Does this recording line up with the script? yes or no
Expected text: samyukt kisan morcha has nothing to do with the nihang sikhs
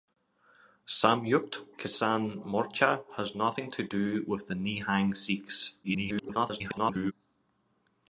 no